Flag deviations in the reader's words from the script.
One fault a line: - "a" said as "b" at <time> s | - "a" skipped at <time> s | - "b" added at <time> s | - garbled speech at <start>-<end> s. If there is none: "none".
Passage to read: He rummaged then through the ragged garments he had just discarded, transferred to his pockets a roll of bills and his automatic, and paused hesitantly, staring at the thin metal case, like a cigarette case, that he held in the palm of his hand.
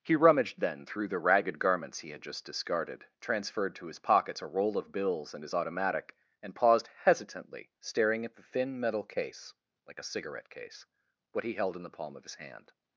- "that" said as "what" at 11.3 s